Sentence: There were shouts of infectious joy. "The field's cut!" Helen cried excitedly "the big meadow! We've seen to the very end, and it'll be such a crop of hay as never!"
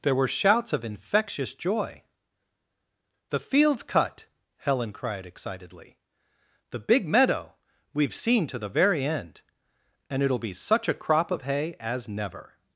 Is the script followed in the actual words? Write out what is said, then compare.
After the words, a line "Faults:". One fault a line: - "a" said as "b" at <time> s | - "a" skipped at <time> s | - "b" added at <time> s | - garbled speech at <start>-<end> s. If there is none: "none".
There were shouts of infectious joy. "The field's cut!" Helen cried excitedly "the big meadow! We've seen to the very end, and it'll be such a crop of hay as never!"
Faults:
none